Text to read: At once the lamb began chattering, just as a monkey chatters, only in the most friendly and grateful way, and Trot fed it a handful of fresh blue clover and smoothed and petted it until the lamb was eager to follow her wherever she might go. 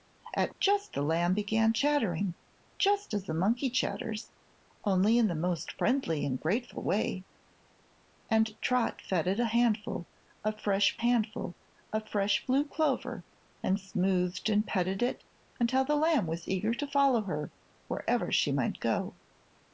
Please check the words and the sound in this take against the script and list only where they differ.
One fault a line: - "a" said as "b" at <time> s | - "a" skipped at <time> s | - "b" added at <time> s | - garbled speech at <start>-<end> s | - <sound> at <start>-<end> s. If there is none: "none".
- "once" said as "just" at 0.6 s
- "handful of fresh" added at 10.9 s